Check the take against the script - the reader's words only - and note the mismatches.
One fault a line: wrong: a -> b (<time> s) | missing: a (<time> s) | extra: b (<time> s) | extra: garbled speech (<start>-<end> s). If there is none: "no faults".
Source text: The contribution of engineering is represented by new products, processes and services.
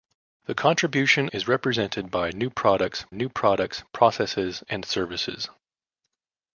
missing: of engineering (1.3 s)
extra: new products (3.1 s)